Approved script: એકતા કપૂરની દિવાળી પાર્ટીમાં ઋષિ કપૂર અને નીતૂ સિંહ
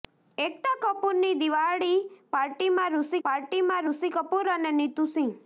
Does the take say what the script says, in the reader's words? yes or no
no